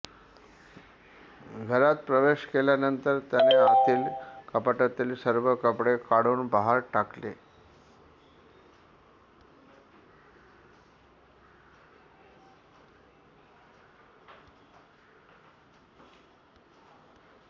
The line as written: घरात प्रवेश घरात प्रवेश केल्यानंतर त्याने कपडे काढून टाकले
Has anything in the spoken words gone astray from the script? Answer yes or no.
yes